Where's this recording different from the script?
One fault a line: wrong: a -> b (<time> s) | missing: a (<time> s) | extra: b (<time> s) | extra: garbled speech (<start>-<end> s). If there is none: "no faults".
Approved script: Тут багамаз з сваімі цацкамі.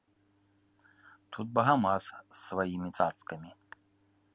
no faults